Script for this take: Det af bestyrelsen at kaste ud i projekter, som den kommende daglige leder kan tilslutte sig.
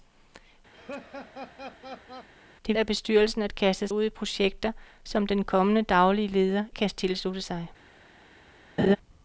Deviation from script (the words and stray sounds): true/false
true